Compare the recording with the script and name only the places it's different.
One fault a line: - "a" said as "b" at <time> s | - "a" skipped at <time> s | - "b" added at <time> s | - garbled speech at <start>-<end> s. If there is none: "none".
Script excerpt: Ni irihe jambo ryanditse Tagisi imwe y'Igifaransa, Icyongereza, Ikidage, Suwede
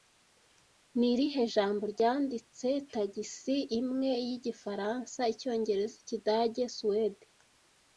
none